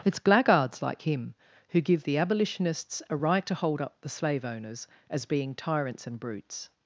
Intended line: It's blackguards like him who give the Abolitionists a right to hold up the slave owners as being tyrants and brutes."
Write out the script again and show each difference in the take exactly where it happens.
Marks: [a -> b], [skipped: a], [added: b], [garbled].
It's blackguards like him who give the Abolitionists a right to hold up the slave owners as being tyrants and brutes."